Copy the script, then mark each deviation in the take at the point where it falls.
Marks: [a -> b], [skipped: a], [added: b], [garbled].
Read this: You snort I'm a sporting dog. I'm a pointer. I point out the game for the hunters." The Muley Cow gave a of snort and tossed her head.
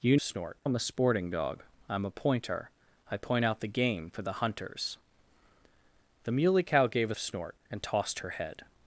You snort I'm a sporting dog. I'm a pointer. I point out the game for the hunters." The Muley Cow gave a of snort and tossed her head.